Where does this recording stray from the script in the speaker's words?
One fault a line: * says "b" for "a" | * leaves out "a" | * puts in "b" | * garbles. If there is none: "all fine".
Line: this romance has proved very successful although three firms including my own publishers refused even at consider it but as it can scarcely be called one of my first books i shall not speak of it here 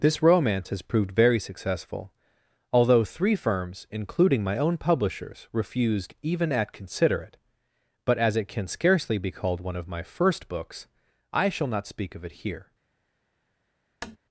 all fine